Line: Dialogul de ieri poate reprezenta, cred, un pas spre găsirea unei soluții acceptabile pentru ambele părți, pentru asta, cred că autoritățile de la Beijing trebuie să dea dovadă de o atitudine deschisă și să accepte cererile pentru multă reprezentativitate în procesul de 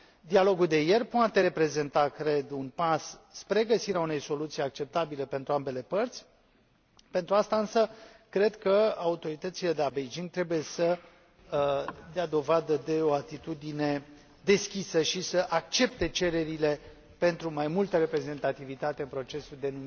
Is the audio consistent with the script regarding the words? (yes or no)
no